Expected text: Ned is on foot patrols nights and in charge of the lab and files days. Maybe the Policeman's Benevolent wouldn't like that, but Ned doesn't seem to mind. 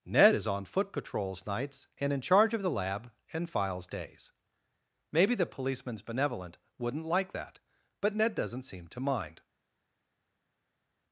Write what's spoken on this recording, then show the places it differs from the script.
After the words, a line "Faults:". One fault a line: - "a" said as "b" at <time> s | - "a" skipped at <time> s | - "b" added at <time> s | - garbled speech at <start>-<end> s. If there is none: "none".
Ned is on foot patrols nights and in charge of the lab and files days. Maybe the Policeman's Benevolent wouldn't like that, but Ned doesn't seem to mind.
Faults:
none